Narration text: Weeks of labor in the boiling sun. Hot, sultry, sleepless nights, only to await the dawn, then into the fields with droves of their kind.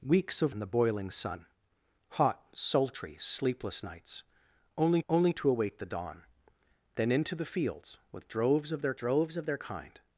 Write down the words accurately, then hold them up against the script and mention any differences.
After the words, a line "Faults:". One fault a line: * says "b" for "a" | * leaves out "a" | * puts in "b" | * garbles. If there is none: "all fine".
Weeks of in the boiling sun. Hot, sultry, sleepless nights, only only to await the dawn, then into the fields with droves of their droves of their kind.
Faults:
* leaves out "labor"
* puts in "only"
* puts in "droves of their"